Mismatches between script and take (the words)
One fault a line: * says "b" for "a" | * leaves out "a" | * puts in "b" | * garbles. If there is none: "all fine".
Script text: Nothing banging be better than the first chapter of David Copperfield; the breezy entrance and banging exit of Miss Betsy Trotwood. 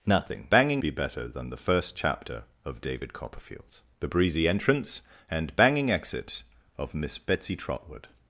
all fine